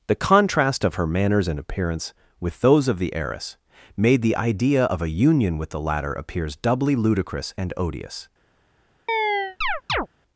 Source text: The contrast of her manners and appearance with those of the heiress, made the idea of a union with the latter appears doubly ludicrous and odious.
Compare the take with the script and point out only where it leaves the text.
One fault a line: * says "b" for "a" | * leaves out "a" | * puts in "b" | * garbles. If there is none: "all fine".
all fine